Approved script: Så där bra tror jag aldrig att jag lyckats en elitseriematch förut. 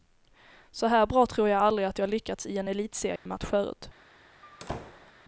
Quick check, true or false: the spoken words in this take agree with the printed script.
false